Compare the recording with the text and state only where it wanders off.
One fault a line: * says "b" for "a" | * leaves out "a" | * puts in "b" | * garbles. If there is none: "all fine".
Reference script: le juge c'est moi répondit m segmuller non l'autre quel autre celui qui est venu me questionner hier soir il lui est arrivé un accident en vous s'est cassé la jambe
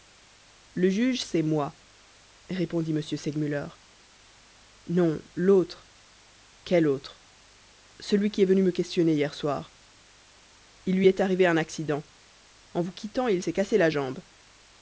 * puts in "quittant il"